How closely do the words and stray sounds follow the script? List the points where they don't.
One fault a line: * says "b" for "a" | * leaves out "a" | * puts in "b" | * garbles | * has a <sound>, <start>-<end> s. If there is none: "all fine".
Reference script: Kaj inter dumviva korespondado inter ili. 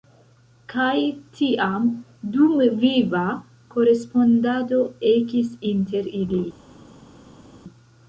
* says "tiam" for "inter"
* puts in "ekis"